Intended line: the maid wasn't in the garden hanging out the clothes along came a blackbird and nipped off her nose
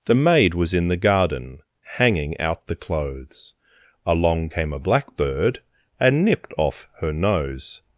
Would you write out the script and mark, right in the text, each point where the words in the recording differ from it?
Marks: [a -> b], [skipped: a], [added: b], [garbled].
the maid [wasn't -> was] in the garden hanging out the clothes along came a blackbird and nipped off her nose